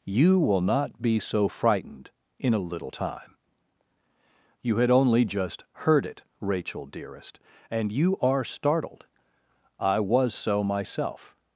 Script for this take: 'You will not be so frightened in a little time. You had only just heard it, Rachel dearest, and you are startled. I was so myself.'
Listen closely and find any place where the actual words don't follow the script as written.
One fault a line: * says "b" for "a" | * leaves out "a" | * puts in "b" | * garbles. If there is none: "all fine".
all fine